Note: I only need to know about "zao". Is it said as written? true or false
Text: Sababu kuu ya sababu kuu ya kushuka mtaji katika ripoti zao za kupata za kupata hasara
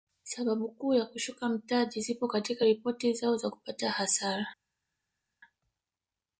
true